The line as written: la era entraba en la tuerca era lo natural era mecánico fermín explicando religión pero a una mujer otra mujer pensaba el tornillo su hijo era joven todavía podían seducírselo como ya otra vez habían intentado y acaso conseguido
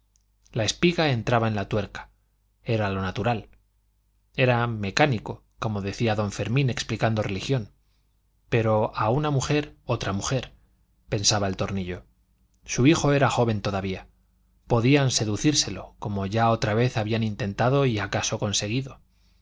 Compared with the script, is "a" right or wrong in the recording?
right